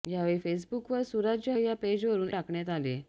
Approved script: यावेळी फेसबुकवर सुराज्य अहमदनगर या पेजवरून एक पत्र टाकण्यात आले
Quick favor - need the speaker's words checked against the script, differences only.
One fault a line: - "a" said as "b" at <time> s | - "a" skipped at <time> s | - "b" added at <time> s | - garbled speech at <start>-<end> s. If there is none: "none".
- "अहमदनगर" skipped at 1.5 s
- "एक पत्र" skipped at 2.3 s